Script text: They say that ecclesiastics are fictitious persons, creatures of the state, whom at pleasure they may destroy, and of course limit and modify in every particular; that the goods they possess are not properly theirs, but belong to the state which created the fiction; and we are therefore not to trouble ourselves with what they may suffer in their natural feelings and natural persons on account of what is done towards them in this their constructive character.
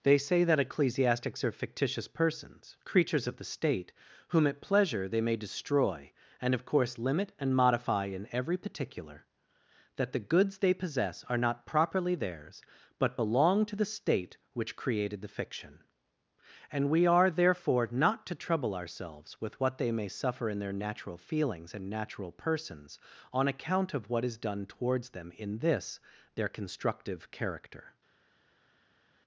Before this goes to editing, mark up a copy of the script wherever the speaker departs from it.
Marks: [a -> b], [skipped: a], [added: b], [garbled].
They say that ecclesiastics are fictitious persons, creatures of the state, whom at pleasure they may destroy, and of course limit and modify in every particular; that the goods they possess are not properly theirs, but belong to the state which created the fiction; and we are therefore not to trouble ourselves with what they may suffer in their natural feelings and natural persons on account of what is done towards them in this their constructive character.